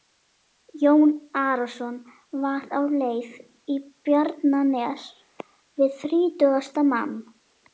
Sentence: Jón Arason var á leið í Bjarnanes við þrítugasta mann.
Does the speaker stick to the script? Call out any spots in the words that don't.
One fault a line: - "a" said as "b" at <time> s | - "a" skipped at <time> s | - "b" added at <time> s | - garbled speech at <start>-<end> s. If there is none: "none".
none